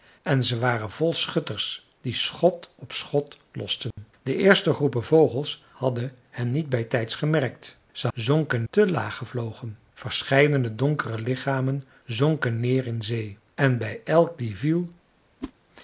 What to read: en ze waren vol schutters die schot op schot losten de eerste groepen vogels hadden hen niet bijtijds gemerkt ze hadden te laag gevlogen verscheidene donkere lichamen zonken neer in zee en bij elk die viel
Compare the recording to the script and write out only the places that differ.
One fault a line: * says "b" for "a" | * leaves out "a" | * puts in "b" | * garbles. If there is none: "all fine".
* says "zonken" for "hadden"